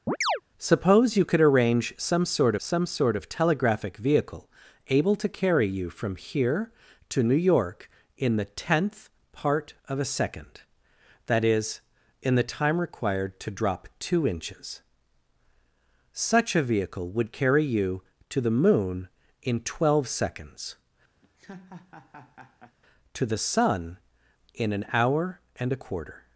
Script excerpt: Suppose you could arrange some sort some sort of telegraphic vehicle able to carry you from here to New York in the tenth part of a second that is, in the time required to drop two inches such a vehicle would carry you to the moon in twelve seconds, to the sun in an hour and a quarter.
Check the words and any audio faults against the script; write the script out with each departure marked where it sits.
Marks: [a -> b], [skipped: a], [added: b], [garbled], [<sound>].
[chirp] Suppose you could arrange some sort some sort of telegraphic vehicle able to carry you from here to New York in the tenth part of a second that is, in the time required to drop two inches such a vehicle would carry you to the moon in twelve seconds, [laugh] to the sun in an hour and a quarter.